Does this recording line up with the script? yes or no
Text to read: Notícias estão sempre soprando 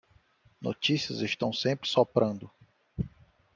yes